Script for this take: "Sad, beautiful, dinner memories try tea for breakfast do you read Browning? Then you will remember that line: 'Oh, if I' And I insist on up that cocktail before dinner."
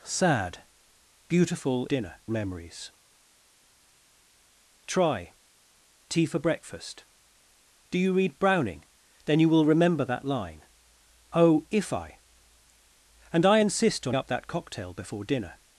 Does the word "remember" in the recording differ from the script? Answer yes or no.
no